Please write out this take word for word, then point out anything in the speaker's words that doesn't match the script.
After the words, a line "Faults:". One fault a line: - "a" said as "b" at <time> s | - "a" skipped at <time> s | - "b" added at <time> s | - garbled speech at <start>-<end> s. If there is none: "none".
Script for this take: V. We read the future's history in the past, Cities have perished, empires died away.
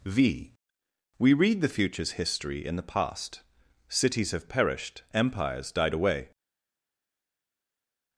V. We read the future's history in the past, Cities have perished, empires died away.
Faults:
none